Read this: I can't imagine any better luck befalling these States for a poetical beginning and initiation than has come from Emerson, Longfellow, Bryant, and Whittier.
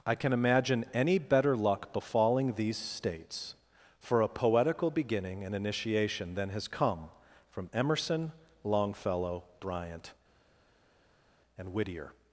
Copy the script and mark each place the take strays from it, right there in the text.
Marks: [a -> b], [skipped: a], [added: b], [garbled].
I [can't -> can] imagine any better luck befalling these States for a poetical beginning and initiation than has come from Emerson, Longfellow, Bryant, and Whittier.